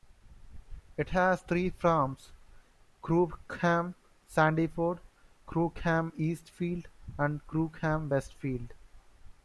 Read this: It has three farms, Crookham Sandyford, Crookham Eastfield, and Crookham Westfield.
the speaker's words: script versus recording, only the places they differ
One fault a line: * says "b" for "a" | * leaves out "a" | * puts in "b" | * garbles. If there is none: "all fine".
all fine